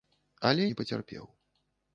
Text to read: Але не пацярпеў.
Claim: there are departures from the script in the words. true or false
false